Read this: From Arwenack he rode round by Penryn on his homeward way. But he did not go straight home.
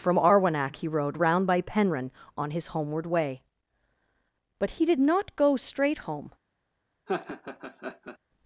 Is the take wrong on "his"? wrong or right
right